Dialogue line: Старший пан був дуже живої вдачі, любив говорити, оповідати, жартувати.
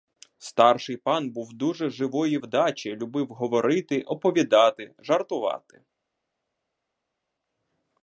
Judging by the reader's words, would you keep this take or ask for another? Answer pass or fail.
pass